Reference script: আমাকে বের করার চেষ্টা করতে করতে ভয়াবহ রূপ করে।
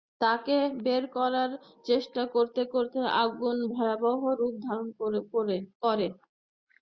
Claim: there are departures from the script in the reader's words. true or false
true